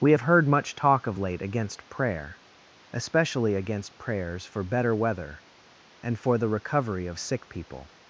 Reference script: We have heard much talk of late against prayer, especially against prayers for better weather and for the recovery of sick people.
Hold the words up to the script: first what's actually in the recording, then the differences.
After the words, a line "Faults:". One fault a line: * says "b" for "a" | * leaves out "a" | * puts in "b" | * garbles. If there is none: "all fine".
We have heard much talk of late against prayer, especially against prayers for better weather and for the recovery of sick people.
Faults:
all fine